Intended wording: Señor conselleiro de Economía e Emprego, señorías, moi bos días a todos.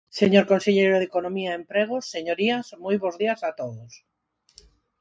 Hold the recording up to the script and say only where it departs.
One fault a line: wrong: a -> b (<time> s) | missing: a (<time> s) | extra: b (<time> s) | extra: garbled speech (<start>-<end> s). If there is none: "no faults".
no faults